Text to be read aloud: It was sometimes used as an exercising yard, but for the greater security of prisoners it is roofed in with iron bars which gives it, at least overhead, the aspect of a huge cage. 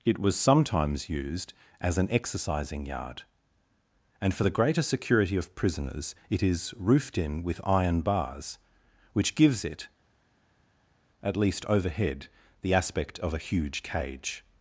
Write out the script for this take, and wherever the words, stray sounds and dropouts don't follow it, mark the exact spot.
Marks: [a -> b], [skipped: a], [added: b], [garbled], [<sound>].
It was sometimes used as an exercising yard, [but -> and] for the greater security of prisoners it is roofed in with iron bars which gives it, at least overhead, the aspect of a huge cage.